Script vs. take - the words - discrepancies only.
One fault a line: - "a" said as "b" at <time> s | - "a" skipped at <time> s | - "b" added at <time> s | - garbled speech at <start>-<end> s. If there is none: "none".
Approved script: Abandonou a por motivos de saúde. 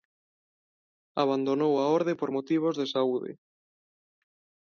- "orde" added at 2.0 s